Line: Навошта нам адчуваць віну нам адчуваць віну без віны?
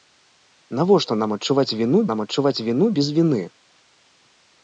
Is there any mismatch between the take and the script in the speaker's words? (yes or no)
no